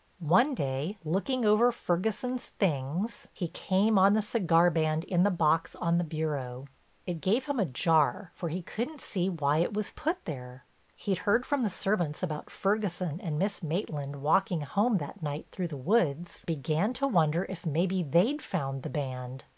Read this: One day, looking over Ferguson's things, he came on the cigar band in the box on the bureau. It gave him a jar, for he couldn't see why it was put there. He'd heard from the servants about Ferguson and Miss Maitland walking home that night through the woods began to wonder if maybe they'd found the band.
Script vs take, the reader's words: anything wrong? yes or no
no